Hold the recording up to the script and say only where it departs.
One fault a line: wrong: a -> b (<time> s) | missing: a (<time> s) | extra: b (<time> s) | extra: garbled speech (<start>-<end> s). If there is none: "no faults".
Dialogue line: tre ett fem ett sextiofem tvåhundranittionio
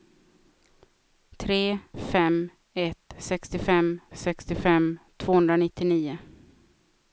missing: ett (1.8 s)
extra: sextiofem (4.1 s)